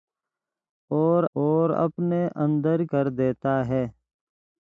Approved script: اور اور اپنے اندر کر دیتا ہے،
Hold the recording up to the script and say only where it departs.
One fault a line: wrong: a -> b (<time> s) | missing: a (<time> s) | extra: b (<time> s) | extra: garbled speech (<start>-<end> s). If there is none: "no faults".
no faults